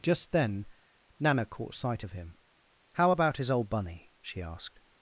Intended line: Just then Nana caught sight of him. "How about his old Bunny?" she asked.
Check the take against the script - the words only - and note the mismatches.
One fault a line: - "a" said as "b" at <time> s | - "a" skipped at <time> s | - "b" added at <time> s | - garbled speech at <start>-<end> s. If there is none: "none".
none